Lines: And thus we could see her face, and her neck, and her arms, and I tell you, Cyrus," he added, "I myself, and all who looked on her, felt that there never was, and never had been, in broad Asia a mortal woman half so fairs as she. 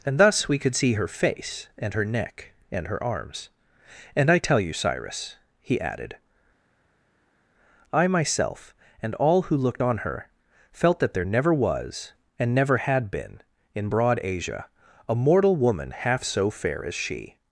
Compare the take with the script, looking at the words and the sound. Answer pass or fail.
fail